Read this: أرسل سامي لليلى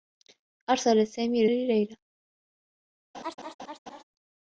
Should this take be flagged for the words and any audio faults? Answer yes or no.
yes